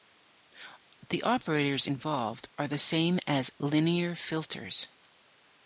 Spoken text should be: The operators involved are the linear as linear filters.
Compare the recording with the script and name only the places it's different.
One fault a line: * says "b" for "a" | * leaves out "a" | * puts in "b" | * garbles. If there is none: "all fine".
* says "same" for "linear"